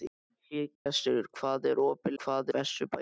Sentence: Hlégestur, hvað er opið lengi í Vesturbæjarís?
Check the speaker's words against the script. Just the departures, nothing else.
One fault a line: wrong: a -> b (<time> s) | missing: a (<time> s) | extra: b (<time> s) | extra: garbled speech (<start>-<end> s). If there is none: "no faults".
wrong: lengi -> hvað (2.2 s)